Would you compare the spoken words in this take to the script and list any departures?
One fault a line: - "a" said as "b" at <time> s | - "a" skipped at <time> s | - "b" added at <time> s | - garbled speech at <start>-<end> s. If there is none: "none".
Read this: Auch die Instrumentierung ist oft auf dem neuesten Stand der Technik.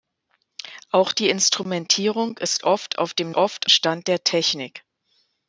- "neuesten" said as "oft" at 3.3 s